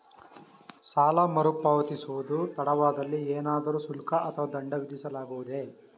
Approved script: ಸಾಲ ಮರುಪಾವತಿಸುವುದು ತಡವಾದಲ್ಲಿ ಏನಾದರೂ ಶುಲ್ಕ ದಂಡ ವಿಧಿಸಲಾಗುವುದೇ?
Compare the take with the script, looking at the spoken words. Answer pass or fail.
fail